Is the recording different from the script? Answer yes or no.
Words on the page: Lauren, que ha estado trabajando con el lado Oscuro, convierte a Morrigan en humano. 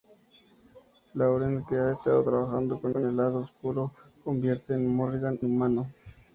yes